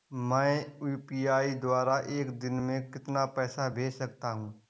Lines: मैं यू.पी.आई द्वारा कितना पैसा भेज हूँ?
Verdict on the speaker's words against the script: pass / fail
fail